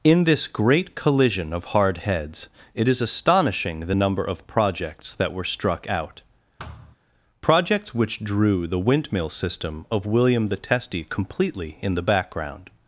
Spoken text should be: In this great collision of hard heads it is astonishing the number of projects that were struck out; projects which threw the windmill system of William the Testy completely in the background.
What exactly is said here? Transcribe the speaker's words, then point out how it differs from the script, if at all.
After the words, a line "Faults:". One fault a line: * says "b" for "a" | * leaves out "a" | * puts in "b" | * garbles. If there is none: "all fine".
In this great collision of hard heads it is astonishing the number of projects that were struck out; projects which drew the windmill system of William the Testy completely in the background.
Faults:
* says "drew" for "threw"